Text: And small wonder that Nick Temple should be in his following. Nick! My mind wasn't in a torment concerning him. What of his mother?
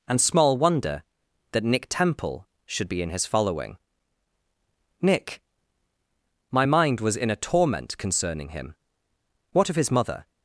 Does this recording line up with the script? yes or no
no